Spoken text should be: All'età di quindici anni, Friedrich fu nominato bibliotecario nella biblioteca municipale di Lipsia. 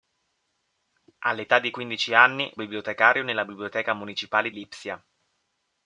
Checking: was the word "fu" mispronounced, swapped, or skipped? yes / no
yes